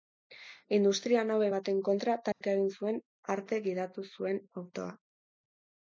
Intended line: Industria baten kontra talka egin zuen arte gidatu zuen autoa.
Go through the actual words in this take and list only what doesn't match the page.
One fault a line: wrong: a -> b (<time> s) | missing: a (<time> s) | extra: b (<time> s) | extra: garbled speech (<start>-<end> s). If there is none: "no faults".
extra: nabe (1.3 s)